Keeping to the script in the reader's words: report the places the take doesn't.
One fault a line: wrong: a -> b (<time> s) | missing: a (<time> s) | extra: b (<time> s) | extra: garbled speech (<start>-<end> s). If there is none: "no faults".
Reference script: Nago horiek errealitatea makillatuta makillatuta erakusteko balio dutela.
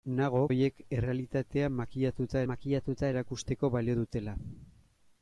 no faults